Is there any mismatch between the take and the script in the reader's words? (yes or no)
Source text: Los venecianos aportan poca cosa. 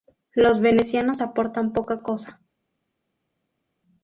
no